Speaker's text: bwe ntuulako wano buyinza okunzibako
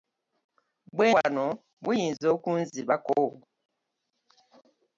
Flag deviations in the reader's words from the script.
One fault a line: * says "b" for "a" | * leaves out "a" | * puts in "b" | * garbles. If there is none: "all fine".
* leaves out "ntuulako"